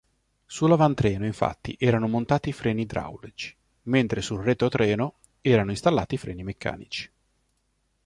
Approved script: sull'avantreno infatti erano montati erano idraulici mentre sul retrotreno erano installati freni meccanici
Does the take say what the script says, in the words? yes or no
no